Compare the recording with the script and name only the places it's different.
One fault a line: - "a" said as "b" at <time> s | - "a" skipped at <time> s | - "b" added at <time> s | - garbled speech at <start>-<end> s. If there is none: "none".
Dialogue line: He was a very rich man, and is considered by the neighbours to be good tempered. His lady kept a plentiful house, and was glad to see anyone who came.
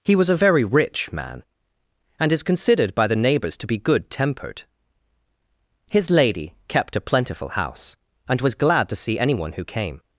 none